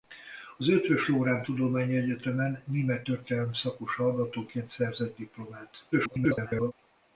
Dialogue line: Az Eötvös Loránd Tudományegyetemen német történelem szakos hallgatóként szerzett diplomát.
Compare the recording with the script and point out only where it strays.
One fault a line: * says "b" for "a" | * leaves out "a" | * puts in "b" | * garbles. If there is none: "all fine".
* garbles